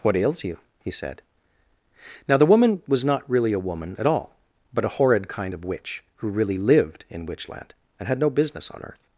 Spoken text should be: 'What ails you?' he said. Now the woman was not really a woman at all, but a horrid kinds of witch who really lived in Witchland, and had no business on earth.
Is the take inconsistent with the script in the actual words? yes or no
yes